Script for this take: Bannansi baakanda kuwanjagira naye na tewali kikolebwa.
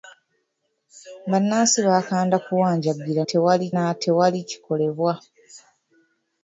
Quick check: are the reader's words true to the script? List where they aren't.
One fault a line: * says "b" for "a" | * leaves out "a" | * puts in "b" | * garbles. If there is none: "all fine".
* says "tewali" for "naye"